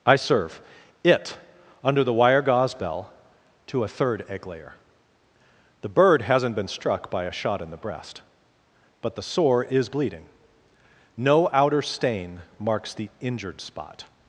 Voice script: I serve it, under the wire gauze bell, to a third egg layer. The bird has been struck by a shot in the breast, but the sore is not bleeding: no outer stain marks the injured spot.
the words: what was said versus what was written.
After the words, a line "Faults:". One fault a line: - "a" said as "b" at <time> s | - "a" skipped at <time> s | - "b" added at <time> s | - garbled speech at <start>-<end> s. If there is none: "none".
I serve it, under the wire gauze bell, to a third egg layer. The bird hasn't been struck by a shot in the breast, but the sore is bleeding: no outer stain marks the injured spot.
Faults:
- "has" said as "hasn't" at 6.2 s
- "not" skipped at 9.9 s